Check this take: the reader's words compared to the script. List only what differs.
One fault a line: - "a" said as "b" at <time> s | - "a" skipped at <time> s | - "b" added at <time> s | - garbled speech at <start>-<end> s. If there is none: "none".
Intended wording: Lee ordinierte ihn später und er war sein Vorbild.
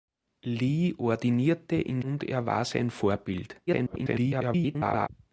- "später" skipped at 2.0 s
- garbled speech at 3.7-5.1 s